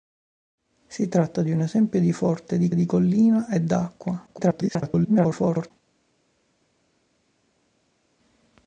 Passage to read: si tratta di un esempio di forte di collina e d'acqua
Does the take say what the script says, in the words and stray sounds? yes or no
no